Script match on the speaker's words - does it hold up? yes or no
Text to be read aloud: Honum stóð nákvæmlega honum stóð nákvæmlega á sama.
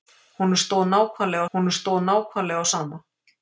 yes